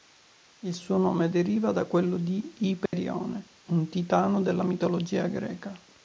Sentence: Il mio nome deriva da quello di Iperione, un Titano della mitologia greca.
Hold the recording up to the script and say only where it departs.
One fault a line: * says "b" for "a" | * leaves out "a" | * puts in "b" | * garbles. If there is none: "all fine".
* says "suo" for "mio"